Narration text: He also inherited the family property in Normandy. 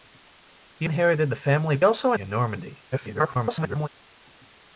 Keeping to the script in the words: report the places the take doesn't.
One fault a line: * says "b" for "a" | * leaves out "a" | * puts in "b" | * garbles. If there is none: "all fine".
* leaves out "also"
* says "also" for "property"
* garbles